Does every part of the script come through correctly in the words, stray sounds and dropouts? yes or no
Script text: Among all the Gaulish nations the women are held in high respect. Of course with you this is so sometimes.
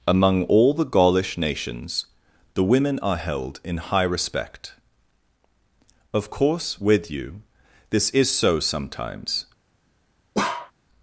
no